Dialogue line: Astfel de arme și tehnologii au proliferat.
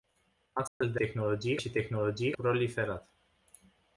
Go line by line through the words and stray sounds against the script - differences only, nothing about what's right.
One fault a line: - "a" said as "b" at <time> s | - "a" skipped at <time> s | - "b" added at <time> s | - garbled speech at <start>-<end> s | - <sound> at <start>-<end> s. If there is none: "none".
- dropout at 0.7-0.8 s
- "arme" said as "tehnologii" at 0.9 s
- "au" skipped at 2.3 s